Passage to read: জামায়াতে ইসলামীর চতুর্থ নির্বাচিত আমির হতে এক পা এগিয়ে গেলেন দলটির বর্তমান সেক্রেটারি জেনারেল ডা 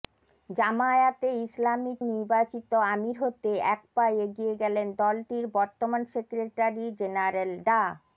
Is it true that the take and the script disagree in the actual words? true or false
true